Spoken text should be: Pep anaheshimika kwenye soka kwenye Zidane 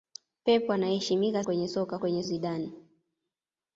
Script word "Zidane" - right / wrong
right